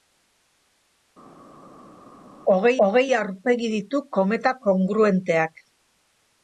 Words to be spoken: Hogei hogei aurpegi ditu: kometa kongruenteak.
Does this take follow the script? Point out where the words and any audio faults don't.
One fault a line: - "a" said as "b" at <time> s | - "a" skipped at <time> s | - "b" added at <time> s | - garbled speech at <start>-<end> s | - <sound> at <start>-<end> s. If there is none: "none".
none